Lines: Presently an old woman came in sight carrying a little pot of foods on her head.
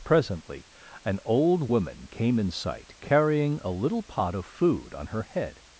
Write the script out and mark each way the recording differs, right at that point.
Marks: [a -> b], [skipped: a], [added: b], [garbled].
Presently an old woman came in sight carrying a little pot of [foods -> food] on her head.